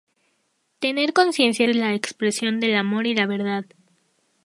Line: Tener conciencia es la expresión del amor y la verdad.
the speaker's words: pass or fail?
pass